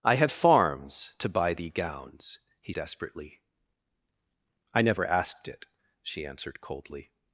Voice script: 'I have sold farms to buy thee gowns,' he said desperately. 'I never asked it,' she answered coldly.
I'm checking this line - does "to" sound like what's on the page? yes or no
yes